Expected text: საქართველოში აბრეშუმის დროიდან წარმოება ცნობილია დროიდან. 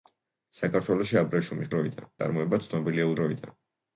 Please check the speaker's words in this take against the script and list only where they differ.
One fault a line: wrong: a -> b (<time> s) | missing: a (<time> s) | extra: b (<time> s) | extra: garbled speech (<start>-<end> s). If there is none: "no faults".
no faults